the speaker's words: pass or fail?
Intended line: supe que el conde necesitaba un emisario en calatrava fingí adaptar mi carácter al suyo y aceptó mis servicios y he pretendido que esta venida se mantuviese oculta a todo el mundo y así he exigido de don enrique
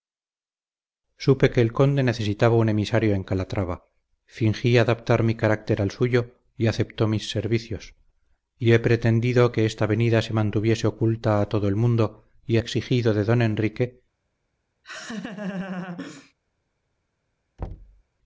fail